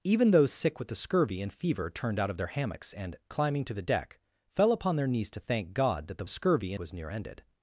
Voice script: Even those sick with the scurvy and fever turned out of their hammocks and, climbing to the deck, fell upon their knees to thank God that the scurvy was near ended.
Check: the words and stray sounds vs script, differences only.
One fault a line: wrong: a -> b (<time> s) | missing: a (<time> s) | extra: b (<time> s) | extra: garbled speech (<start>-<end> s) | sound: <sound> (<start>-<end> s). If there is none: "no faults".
no faults